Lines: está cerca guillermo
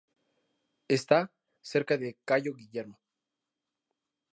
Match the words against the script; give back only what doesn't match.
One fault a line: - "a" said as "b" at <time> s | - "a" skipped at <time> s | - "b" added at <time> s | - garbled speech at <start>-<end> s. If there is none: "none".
- "de cayo" added at 2.0 s